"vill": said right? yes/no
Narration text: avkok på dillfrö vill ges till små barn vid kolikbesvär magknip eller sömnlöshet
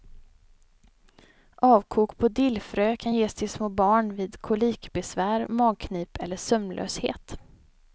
no